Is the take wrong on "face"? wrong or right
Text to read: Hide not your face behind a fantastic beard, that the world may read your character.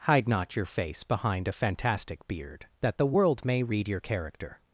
right